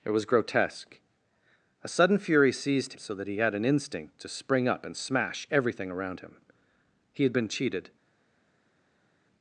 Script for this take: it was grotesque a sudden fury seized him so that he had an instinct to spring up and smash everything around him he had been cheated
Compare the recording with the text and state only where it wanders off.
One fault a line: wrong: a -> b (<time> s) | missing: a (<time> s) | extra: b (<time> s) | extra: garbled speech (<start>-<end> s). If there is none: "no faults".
missing: him (2.9 s)